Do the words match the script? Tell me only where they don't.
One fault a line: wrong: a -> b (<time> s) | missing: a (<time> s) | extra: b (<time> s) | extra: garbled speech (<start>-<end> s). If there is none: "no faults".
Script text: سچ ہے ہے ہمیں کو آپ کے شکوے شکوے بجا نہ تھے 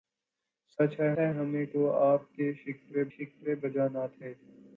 no faults